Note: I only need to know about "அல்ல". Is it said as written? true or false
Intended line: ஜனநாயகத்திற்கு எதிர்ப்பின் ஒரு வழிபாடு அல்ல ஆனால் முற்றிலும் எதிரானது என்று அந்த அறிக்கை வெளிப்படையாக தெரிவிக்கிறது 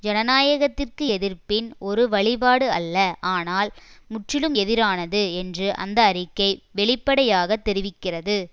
true